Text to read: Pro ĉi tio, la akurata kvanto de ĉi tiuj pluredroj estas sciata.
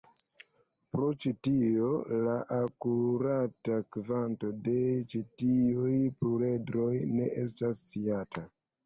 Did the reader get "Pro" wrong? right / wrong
right